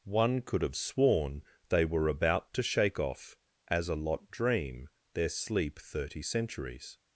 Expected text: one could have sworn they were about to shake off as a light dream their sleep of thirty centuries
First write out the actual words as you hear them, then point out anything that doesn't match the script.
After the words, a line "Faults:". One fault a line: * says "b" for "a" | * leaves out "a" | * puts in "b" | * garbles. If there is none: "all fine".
one could have sworn they were about to shake off as a lot dream their sleep thirty centuries
Faults:
* says "lot" for "light"
* leaves out "of"